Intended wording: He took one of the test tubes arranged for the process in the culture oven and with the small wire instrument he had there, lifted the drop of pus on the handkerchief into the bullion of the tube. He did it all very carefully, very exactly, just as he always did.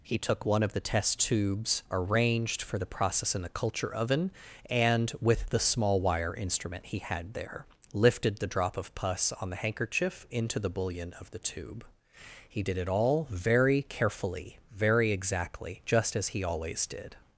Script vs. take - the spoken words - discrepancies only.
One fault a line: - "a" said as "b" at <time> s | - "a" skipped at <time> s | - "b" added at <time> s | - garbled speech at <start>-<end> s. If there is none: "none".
none